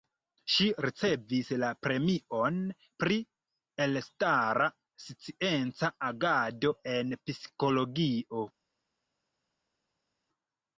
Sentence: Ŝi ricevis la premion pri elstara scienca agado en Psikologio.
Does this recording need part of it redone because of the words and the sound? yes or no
no